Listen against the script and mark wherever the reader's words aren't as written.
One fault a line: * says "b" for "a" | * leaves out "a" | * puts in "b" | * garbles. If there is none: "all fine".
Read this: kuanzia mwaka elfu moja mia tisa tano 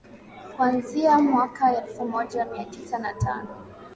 * puts in "na"